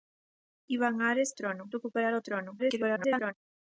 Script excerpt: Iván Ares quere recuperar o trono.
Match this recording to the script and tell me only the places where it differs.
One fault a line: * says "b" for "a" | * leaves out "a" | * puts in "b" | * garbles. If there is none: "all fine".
* says "trono" for "quere"
* garbles